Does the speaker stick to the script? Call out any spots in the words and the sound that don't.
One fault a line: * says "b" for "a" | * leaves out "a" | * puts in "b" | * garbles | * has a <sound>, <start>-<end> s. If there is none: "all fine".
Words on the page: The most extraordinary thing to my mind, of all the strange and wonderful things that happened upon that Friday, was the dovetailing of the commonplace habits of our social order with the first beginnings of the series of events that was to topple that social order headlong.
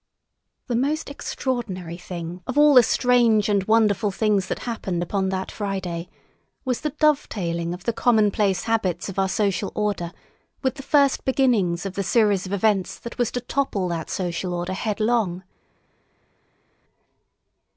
* leaves out "to my mind"